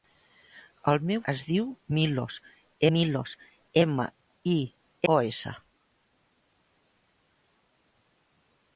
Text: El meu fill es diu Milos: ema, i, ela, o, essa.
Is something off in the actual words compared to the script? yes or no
yes